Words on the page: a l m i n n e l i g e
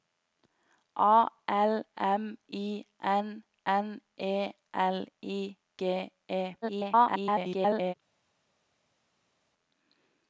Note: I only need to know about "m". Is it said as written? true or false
true